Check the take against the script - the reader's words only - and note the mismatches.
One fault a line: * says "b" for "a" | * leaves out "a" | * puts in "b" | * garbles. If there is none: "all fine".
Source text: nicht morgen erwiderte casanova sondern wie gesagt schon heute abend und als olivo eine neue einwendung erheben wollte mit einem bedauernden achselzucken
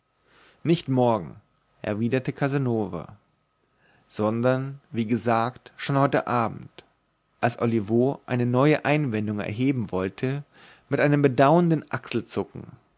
* leaves out "und"